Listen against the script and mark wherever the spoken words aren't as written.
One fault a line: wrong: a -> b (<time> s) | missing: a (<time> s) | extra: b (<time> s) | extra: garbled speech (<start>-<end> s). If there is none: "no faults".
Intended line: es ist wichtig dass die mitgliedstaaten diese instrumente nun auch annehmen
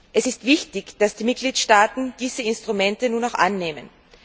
no faults